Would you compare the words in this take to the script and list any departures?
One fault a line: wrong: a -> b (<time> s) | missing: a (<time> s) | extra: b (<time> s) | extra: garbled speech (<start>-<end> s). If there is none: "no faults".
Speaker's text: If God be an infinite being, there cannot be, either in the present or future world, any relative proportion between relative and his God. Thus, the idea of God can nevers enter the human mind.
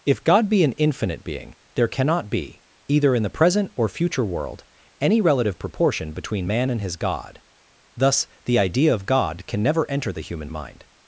wrong: relative -> man (6.5 s)
wrong: nevers -> never (9.6 s)